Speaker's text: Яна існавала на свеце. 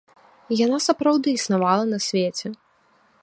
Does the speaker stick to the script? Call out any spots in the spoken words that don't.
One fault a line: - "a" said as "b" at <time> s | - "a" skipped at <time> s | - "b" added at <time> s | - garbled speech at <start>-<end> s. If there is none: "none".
- "сапраўды" added at 0.9 s